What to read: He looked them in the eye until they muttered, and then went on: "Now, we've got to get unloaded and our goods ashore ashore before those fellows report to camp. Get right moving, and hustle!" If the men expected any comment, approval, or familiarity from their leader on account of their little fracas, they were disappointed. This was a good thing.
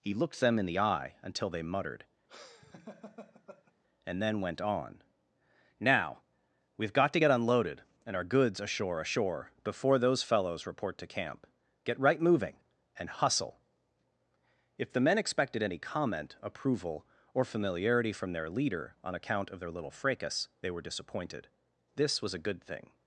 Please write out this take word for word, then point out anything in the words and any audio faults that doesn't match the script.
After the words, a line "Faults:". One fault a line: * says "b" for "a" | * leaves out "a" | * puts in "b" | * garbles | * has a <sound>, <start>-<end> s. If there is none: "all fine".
He looked them in the eye until they muttered, and then went on: "Now, we've got to get unloaded and our goods ashore ashore before those fellows report to camp. Get right moving, and hustle!" If the men expected any comment, approval, or familiarity from their leader on account of their little fracas, they were disappointed. This was a good thing.
Faults:
* has a laugh, 2.3-3.7 s